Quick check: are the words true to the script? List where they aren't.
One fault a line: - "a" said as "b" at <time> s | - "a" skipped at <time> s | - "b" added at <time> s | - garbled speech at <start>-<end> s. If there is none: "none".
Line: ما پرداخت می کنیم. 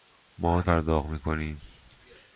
none